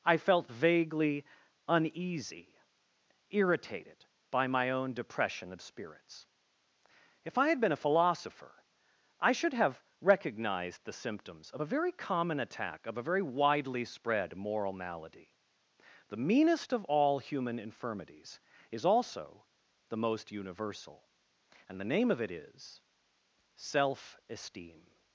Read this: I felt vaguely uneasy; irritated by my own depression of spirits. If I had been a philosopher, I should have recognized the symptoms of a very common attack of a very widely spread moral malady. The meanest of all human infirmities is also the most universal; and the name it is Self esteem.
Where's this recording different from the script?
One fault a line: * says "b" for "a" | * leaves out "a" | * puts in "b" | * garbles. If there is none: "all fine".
* puts in "of"